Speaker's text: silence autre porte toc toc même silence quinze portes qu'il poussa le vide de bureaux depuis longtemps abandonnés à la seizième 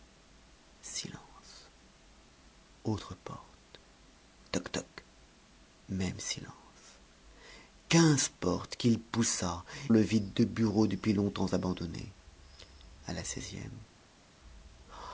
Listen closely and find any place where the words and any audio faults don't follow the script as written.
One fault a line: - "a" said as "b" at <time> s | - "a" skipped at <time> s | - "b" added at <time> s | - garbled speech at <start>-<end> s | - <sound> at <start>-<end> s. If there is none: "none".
none